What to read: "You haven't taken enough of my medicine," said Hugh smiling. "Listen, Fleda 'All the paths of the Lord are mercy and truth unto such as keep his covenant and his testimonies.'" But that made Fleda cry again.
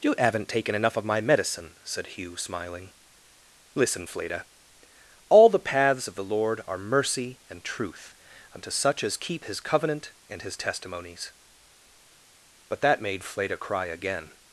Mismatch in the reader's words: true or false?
false